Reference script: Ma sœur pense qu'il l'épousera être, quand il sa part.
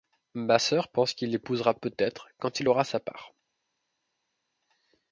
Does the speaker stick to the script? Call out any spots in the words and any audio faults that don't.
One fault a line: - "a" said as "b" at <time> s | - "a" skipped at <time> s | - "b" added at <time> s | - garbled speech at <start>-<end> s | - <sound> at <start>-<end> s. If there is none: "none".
- "peut" added at 1.7 s
- "aura" added at 2.7 s